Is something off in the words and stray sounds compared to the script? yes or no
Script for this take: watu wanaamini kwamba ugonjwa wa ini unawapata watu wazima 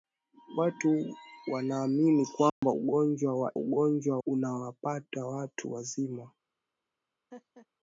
yes